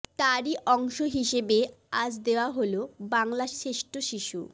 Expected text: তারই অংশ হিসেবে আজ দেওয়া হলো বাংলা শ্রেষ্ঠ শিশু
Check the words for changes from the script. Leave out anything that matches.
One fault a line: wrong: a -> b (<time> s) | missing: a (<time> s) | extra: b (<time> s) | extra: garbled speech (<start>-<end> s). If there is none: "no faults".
no faults